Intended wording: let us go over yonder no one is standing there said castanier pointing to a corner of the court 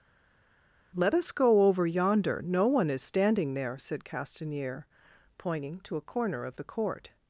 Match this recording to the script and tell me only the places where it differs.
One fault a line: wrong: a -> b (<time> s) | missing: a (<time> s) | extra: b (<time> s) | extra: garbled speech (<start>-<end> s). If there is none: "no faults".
no faults